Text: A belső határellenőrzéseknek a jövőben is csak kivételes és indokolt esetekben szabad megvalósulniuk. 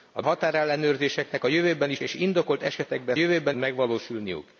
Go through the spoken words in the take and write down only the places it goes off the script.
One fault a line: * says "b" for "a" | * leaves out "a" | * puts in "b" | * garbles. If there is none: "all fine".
* leaves out "belső"
* leaves out "csak kivételes"
* says "jövőben" for "szabad"